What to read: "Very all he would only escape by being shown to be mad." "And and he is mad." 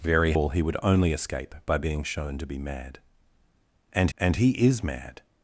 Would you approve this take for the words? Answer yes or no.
yes